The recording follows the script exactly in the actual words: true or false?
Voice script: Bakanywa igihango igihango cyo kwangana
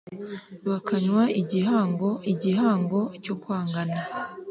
true